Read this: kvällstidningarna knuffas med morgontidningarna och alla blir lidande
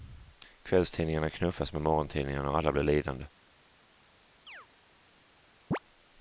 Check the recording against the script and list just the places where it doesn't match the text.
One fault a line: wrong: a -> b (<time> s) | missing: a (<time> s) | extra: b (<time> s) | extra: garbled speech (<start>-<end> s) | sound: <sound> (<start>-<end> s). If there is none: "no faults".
sound: chirp (4.5-4.7 s)
sound: chirp (5.7-5.8 s)